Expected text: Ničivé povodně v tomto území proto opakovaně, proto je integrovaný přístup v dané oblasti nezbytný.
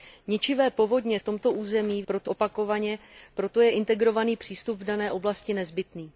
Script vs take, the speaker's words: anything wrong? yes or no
no